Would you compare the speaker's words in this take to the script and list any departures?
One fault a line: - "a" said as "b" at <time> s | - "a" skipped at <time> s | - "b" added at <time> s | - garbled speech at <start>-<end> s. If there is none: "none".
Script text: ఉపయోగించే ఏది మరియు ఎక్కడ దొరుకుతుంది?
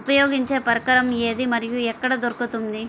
- "పరికరం" added at 0.7 s